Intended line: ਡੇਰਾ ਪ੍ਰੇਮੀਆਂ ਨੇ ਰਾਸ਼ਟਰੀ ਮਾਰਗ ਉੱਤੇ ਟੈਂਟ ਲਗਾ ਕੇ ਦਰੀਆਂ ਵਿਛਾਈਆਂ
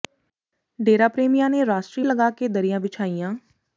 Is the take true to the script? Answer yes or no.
no